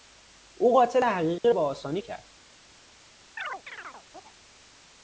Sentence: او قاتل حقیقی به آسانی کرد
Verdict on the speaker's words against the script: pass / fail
pass